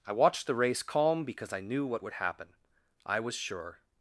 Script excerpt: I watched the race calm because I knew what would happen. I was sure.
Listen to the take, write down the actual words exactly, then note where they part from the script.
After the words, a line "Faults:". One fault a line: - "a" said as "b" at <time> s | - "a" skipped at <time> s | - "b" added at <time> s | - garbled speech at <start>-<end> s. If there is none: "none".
I watched the race calm because I knew what would happen. I was sure.
Faults:
none